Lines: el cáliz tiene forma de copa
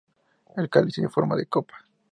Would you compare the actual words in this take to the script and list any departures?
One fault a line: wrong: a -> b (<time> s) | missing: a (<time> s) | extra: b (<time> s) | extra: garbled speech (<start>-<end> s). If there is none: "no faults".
no faults